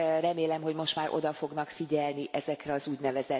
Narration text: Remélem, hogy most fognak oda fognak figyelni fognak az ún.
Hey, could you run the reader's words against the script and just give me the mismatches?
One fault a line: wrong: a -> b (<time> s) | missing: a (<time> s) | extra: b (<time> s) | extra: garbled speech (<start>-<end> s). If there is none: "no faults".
wrong: fognak -> már (0.9 s)
wrong: fognak -> ezekre (2.3 s)